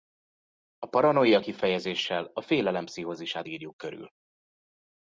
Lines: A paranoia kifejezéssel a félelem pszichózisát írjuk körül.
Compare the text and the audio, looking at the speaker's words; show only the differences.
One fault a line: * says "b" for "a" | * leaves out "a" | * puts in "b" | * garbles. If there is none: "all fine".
all fine